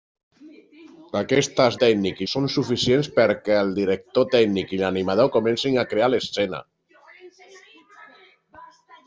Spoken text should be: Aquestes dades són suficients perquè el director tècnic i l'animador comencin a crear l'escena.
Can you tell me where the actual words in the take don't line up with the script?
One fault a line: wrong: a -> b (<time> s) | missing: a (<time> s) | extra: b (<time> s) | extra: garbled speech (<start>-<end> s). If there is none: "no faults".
wrong: dades -> tècnic (1.8 s)